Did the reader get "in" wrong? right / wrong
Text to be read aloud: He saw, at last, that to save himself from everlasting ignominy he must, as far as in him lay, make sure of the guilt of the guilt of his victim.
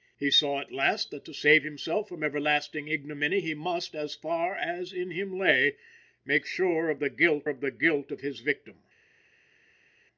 right